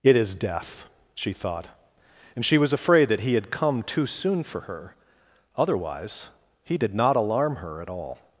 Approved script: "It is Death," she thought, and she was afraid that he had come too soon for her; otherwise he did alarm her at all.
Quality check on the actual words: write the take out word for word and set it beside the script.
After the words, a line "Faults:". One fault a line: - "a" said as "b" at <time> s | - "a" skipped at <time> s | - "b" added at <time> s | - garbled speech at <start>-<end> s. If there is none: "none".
"It is Death," she thought, and she was afraid that he had come too soon for her; otherwise he did not alarm her at all.
Faults:
- "not" added at 7.0 s